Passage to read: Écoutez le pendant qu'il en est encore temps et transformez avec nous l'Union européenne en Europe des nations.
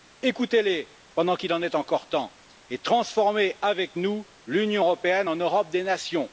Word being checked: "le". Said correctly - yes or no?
no